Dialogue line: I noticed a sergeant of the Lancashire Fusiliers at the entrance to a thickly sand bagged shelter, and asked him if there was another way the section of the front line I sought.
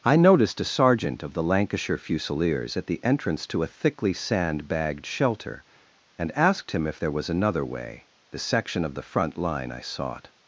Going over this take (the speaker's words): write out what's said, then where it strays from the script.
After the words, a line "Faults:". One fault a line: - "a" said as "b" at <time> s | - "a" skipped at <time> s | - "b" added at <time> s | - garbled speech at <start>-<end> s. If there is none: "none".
I noticed a sergeant of the Lancashire Fusiliers at the entrance to a thickly sand bagged shelter, and asked him if there was another way the section of the front line I sought.
Faults:
none